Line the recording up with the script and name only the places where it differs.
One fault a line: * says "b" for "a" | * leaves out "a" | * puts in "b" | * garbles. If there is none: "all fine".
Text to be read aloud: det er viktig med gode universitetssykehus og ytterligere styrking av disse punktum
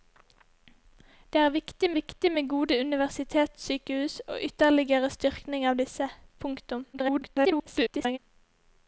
* puts in "viktig"
* garbles